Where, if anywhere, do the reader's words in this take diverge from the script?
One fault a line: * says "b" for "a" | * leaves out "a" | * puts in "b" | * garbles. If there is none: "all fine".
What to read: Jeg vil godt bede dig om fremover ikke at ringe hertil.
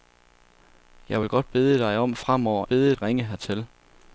* says "bede" for "ikke"